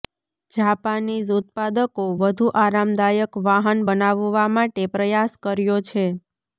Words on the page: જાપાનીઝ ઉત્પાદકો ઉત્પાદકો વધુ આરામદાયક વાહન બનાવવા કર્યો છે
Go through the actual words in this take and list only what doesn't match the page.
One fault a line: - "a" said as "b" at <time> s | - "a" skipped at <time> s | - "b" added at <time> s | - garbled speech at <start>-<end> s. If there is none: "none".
- "ઉત્પાદકો" skipped at 2.0 s
- "માટે પ્રયાસ" added at 4.5 s